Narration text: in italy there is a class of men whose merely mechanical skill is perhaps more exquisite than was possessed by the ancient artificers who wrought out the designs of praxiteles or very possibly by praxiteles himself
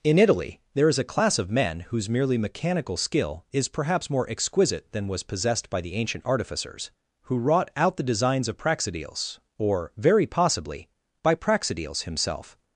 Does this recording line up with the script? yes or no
yes